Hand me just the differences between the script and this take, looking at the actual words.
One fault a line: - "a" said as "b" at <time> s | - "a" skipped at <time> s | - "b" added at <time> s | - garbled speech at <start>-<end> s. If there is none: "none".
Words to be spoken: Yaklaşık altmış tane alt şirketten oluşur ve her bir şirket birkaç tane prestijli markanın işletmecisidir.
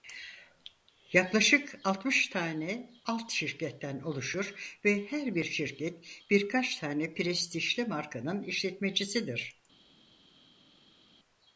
none